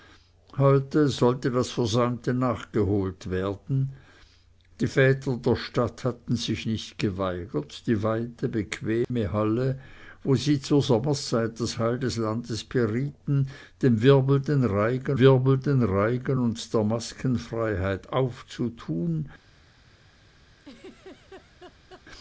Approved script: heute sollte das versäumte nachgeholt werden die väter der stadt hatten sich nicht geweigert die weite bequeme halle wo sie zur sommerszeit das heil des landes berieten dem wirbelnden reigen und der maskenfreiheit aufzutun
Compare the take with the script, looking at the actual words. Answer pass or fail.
fail